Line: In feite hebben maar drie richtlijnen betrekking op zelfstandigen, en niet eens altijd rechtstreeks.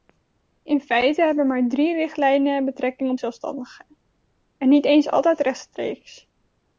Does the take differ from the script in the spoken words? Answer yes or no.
no